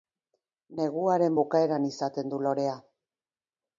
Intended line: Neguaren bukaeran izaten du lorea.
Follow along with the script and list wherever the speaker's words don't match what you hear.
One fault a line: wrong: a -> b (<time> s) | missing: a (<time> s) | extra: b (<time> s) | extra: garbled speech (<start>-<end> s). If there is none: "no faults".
no faults